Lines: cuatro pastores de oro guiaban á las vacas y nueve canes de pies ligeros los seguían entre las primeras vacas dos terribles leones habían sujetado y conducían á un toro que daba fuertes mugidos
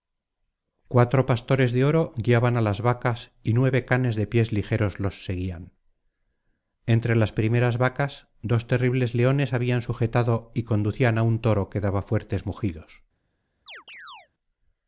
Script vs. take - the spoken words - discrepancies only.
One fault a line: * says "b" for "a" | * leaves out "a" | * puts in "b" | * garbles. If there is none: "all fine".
all fine